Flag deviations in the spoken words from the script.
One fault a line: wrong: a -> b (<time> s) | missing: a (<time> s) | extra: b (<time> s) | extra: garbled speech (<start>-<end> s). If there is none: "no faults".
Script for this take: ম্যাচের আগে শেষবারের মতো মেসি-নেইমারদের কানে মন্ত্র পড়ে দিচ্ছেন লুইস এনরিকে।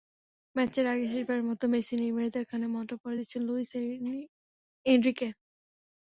no faults